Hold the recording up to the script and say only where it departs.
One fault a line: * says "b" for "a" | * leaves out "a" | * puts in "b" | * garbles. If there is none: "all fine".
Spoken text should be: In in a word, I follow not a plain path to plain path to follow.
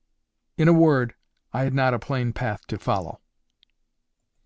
* leaves out "in"
* says "had" for "follow"
* leaves out "plain path to"